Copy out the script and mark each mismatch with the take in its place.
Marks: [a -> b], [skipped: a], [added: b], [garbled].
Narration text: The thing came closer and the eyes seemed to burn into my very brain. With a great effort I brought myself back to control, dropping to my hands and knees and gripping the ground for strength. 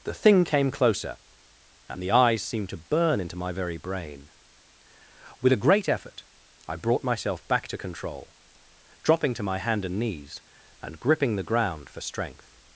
The thing came closer and the eyes seemed to burn into my very brain. With a great effort I brought myself back to control, dropping to my [hands -> hand] and knees and gripping the ground for strength.